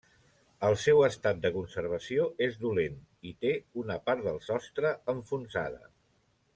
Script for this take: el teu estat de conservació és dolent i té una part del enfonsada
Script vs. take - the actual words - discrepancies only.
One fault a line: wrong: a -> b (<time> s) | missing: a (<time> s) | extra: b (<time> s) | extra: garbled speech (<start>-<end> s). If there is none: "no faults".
wrong: teu -> seu (0.8 s)
extra: sostre (4.5 s)